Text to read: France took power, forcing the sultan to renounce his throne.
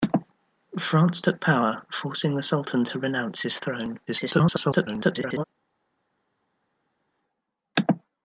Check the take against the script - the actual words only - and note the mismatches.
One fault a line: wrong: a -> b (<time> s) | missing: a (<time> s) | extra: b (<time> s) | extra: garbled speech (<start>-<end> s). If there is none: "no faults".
extra: garbled speech (4.1-5.4 s)